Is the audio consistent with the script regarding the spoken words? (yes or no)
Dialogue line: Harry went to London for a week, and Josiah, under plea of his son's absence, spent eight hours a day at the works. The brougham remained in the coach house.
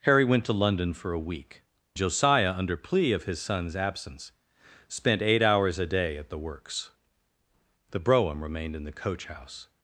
no